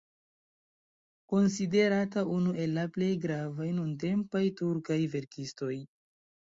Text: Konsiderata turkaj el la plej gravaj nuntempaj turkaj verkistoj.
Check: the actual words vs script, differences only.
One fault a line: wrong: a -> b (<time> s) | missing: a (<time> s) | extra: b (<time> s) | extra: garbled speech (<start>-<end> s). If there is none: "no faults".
wrong: turkaj -> unu (2.4 s)